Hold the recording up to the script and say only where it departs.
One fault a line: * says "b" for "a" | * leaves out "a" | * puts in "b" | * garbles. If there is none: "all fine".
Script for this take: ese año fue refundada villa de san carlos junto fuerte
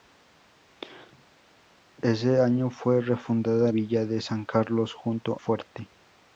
all fine